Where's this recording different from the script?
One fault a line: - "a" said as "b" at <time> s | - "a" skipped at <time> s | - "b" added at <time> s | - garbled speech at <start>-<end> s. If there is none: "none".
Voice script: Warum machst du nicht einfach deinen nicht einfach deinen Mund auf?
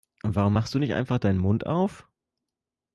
- "nicht einfach deinen" skipped at 1.4 s